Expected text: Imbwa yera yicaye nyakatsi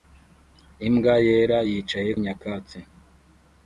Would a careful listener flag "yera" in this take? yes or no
no